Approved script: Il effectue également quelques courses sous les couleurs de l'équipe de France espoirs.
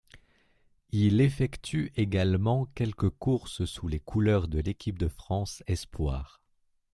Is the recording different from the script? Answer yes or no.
no